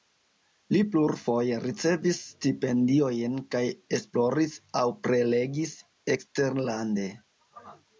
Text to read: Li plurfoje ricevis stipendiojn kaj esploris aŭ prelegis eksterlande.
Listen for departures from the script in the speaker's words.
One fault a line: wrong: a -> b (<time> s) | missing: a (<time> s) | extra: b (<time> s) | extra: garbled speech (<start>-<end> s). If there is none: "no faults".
no faults